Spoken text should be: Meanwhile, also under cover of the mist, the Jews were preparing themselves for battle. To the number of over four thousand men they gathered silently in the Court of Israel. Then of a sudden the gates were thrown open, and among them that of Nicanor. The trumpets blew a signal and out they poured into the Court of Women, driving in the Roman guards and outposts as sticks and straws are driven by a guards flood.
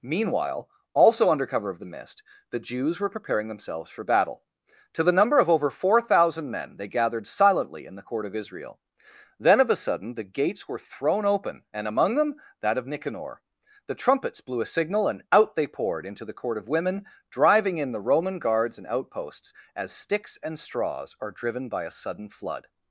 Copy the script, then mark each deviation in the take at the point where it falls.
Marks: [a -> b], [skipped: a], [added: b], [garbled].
Meanwhile, also under cover of the mist, the Jews were preparing themselves for battle. To the number of over four thousand men they gathered silently in the Court of Israel. Then of a sudden the gates were thrown open, and among them that of Nicanor. The trumpets blew a signal and out they poured into the Court of Women, driving in the Roman guards and outposts as sticks and straws are driven by a [guards -> sudden] flood.